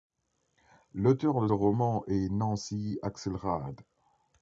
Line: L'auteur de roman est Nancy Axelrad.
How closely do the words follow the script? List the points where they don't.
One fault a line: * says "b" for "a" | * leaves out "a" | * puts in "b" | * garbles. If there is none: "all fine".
all fine